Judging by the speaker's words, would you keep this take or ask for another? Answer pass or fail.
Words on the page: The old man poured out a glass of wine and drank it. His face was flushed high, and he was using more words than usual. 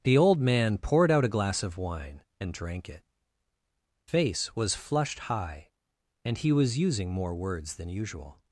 fail